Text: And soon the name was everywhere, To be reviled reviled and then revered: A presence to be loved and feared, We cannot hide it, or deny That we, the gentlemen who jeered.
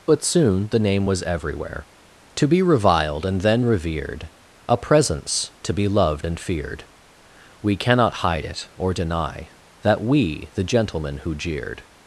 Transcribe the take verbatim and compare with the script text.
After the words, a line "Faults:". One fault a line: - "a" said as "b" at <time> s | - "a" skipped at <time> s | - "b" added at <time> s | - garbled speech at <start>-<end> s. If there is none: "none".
But soon the name was everywhere, To be reviled and then revered: A presence to be loved and feared, We cannot hide it, or deny That we, the gentlemen who jeered.
Faults:
- "And" said as "But" at 0.1 s
- "reviled" skipped at 3.3 s